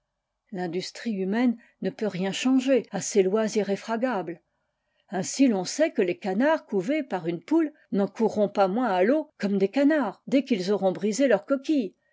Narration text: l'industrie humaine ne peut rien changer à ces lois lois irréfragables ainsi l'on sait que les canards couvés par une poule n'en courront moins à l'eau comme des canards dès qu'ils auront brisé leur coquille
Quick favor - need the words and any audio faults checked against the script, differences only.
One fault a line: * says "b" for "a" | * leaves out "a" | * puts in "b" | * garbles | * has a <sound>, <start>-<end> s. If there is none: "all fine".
* leaves out "lois"
* puts in "pas"